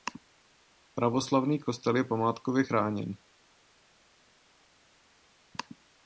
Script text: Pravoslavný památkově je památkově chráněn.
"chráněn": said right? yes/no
yes